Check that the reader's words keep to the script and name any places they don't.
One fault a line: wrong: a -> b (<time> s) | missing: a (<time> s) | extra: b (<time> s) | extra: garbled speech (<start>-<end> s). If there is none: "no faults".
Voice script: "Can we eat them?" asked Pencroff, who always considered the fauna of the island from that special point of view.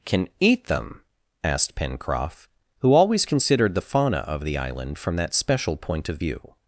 missing: we (0.3 s)